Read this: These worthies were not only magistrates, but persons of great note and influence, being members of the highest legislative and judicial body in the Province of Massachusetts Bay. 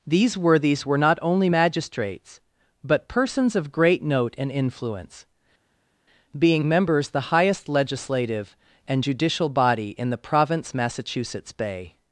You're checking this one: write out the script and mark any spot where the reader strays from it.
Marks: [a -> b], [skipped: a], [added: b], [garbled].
These worthies were not only magistrates, but persons of great note and influence, being members [skipped: of] the highest legislative and judicial body in the Province [skipped: of] Massachusetts Bay.